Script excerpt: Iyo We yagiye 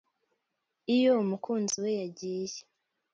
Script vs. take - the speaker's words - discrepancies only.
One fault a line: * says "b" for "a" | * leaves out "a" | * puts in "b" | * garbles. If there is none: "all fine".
* puts in "Umukunzi"